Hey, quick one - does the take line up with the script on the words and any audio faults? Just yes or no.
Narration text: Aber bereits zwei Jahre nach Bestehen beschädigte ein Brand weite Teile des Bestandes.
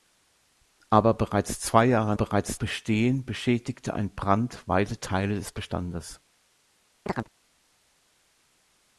no